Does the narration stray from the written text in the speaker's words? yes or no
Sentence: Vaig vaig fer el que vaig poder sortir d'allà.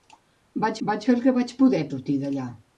no